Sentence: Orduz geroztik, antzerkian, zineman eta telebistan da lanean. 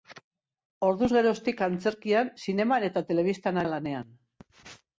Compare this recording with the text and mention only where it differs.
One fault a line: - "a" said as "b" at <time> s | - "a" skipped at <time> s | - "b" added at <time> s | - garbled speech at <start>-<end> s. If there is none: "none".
none